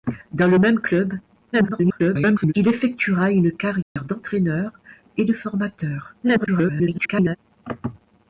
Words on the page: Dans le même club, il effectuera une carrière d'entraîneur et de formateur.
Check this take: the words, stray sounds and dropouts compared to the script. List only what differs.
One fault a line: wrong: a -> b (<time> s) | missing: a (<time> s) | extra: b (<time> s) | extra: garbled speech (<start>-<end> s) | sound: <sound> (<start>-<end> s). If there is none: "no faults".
extra: garbled speech (1.5-2.5 s)
sound: dropout (3.8-4.0 s)
extra: garbled speech (6.2-7.4 s)